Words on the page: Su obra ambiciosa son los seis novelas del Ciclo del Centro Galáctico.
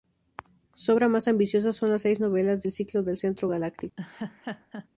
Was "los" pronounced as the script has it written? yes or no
no